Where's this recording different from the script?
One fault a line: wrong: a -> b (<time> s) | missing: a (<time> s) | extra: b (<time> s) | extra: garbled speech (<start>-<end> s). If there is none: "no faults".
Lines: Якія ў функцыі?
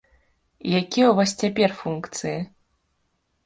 extra: вас цяпер (1.2 s)